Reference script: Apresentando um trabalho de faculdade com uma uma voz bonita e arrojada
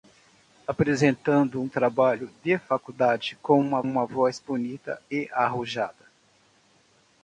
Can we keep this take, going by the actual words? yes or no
yes